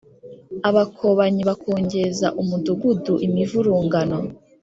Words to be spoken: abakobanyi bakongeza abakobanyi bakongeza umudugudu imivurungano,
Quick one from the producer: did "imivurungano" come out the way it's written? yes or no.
yes